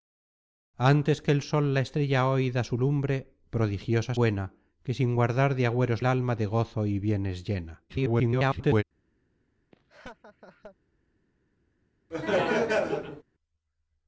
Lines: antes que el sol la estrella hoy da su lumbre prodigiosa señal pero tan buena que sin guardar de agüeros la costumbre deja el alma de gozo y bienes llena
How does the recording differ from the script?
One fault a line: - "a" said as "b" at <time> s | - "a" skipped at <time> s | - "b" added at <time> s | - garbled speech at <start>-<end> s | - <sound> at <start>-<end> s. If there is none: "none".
- "señal pero tan" skipped at 4.2 s
- "la costumbre deja" skipped at 6.0 s
- garbled speech at 7.9-8.8 s
- laugh at 9.7-10.8 s
- laugh at 12.1-13.2 s